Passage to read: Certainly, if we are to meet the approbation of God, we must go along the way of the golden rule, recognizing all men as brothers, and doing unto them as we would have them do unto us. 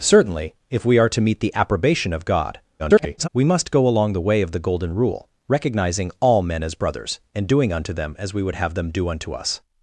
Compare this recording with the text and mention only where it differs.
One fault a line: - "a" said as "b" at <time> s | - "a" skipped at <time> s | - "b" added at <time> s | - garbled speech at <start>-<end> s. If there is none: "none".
- garbled speech at 2.8-3.3 s